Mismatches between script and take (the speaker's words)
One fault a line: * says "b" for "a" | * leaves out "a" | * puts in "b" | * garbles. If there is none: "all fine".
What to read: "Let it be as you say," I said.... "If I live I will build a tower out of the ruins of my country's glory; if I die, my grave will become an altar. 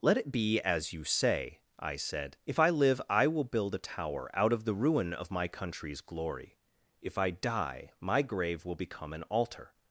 * says "ruin" for "ruins"